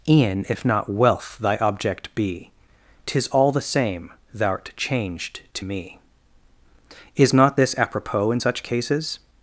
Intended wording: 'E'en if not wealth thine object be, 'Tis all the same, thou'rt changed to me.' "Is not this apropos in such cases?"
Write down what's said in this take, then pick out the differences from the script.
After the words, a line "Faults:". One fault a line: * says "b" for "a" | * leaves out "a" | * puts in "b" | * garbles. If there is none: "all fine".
'E'en if not wealth thy object be, 'Tis all the same, thou'rt changed to me.' "Is not this apropos in such cases?"
Faults:
* says "thy" for "thine"